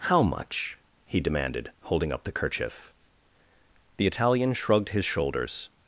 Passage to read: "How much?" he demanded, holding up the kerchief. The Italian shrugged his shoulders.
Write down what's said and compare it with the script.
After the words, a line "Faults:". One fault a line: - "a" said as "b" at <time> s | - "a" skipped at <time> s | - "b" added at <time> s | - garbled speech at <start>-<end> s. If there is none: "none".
"How much?" he demanded, holding up the kerchief. The Italian shrugged his shoulders.
Faults:
none